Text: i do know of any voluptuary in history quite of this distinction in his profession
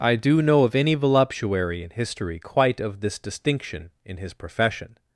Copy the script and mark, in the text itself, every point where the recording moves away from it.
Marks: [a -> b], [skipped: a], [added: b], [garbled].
i do know of any voluptuary in history quite of this distinction in his profession